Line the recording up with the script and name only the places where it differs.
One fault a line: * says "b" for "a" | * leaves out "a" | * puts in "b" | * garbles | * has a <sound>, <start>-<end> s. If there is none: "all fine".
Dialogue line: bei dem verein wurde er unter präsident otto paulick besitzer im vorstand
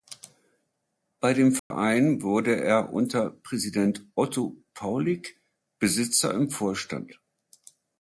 * has a dropout, 1.6-1.7 s